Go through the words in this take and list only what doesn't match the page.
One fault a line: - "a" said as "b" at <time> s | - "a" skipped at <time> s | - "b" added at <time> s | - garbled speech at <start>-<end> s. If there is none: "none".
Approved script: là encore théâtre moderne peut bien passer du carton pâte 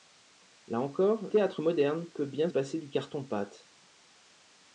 none